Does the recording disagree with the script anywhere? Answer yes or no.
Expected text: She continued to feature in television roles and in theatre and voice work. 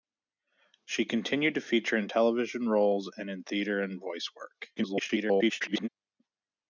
yes